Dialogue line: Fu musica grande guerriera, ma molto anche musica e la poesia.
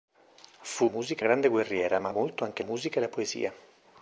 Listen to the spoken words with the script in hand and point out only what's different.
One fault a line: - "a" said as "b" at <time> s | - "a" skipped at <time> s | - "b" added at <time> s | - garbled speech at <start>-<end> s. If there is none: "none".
none